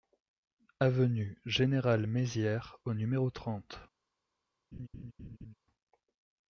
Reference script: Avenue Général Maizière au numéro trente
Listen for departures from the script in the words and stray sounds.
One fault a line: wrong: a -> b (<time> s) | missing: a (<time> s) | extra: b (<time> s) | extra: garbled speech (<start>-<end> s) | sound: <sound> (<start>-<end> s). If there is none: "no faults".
sound: laugh (4.7-5.5 s)